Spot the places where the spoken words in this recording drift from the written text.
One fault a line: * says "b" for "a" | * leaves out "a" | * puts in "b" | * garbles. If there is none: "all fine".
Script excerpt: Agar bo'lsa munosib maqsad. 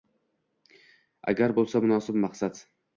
all fine